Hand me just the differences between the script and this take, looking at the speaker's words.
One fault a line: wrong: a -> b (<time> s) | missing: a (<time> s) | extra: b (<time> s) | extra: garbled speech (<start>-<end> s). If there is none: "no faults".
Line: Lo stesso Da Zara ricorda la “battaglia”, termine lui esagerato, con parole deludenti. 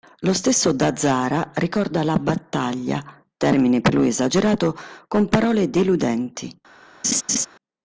extra: per (3.8 s)